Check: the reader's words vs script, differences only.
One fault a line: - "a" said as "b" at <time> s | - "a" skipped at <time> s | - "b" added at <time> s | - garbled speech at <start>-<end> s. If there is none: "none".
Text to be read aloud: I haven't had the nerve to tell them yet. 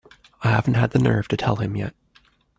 - "them" said as "him" at 1.6 s